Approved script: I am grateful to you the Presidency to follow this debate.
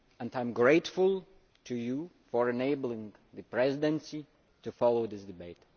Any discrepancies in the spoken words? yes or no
yes